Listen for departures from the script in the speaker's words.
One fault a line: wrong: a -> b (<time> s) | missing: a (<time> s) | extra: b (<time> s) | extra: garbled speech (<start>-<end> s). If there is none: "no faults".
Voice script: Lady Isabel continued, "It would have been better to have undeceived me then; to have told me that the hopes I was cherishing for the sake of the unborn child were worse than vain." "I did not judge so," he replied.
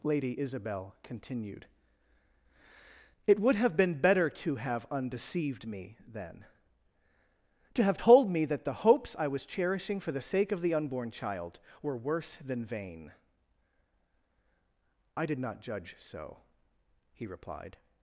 no faults